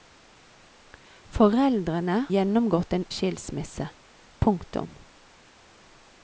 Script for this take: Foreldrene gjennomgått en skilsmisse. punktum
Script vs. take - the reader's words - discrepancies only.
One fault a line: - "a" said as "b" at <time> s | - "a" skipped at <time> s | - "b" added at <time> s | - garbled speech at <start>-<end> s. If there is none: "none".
none